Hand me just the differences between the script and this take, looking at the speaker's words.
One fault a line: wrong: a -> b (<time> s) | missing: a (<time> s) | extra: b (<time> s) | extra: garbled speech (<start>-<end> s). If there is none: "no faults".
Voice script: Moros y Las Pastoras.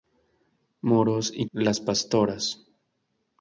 no faults